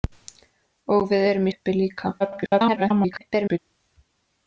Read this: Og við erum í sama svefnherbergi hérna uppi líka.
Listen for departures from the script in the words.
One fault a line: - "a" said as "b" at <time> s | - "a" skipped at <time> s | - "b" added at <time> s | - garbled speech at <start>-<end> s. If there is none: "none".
- "sama svefnherbergi hérna" skipped at 1.5 s
- garbled speech at 2.2-3.6 s